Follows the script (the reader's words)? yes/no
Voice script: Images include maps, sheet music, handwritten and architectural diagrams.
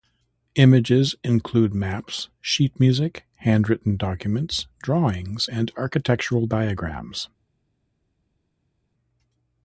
no